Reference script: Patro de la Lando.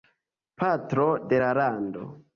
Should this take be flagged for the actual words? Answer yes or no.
no